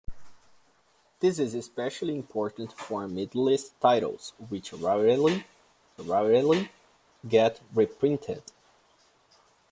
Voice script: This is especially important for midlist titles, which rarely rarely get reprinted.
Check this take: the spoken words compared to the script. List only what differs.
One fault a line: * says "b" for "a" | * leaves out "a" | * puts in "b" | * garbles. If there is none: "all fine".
all fine